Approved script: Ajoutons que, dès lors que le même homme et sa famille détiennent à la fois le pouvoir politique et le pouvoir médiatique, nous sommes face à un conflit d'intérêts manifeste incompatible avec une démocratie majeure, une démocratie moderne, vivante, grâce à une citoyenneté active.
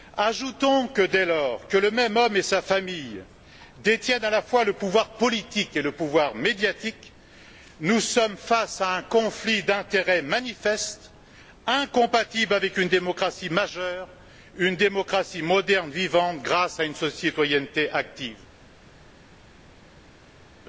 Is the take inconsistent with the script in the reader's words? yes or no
no